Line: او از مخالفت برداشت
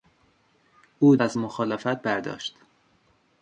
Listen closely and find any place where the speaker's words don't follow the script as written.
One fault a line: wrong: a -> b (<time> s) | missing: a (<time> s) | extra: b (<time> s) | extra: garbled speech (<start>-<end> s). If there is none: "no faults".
no faults